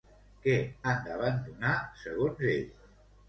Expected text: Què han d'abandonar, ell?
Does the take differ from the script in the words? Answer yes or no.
yes